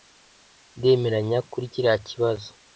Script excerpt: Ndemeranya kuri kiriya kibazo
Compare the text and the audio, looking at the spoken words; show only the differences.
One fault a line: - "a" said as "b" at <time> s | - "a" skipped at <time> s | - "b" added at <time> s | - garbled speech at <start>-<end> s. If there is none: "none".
none